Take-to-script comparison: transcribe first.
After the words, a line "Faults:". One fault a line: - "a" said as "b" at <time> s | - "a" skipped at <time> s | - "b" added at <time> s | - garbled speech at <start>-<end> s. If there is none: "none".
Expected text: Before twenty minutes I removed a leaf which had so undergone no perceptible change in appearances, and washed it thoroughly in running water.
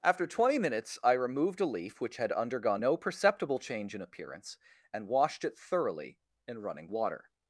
After twenty minutes I removed a leaf which had undergone no perceptible change in appearance, and washed it thoroughly in running water.
Faults:
- "Before" said as "After" at 0.0 s
- "so" skipped at 2.3 s
- "appearances" said as "appearance" at 4.0 s